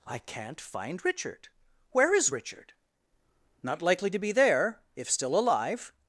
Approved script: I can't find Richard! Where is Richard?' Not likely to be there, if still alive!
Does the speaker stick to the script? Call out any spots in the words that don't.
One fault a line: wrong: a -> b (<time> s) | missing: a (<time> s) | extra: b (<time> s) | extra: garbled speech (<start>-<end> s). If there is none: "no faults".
no faults